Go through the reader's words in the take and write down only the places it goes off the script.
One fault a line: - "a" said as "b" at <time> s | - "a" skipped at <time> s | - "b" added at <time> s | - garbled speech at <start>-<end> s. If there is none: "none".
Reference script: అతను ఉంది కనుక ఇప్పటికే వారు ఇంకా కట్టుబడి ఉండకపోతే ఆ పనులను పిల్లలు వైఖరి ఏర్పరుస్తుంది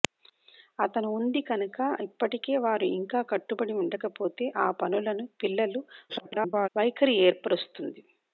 - garbled speech at 6.1-6.7 s